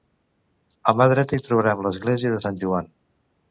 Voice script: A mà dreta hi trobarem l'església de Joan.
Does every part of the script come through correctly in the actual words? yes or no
no